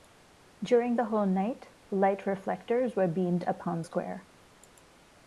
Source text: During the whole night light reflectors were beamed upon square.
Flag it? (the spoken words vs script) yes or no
no